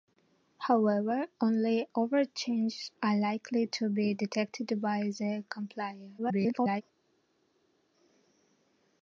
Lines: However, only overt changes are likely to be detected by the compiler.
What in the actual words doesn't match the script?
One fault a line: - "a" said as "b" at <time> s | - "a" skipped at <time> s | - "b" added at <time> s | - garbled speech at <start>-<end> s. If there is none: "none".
- garbled speech at 6.2-6.8 s